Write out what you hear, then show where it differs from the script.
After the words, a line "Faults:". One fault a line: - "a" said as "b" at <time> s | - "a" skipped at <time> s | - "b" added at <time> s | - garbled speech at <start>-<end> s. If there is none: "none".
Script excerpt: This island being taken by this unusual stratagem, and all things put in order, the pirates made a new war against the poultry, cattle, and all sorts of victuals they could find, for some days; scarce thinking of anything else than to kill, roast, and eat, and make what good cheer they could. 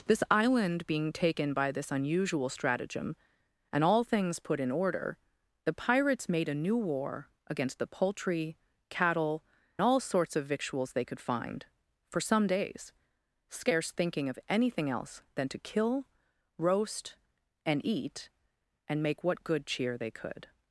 This island being taken by this unusual stratagem, and all things put in order, the pirates made a new war against the poultry, cattle, all sorts of victuals they could find, for some days; scarce thinking of anything else than to kill, roast, and eat, and make what good cheer they could.
Faults:
- "and" skipped at 9.4 s